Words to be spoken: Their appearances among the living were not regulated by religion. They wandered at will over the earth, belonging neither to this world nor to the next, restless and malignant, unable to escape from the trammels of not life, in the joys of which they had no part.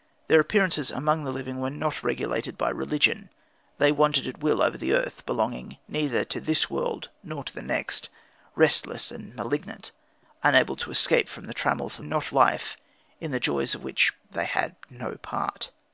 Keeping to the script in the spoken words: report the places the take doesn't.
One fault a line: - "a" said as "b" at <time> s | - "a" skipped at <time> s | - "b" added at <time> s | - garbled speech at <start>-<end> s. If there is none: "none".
none